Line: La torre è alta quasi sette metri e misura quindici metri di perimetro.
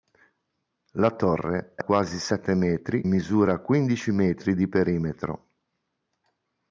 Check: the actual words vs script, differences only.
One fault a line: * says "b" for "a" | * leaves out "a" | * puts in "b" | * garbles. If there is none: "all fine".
* leaves out "alta"
* leaves out "e"